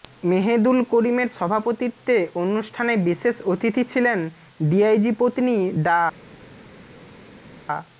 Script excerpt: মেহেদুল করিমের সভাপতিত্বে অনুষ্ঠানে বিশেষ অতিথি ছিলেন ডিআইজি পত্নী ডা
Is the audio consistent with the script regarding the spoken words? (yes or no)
yes